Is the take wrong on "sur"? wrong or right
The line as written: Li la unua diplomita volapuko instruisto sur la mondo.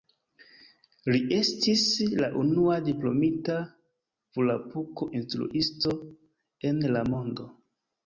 wrong